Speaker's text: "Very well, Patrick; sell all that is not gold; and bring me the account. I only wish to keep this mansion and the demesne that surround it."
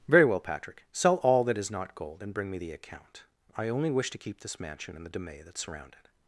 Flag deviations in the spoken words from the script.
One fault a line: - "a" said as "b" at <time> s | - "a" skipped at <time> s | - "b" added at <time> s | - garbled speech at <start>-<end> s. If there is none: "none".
none